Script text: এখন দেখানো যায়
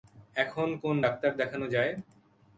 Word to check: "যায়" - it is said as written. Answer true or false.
true